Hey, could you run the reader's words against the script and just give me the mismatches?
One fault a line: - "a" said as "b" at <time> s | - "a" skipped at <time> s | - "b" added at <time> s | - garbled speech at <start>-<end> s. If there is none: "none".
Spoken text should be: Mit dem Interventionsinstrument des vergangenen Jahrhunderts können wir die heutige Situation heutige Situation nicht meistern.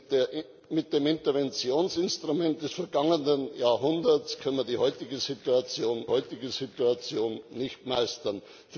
none